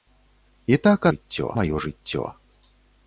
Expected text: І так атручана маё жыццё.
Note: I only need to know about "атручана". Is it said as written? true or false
false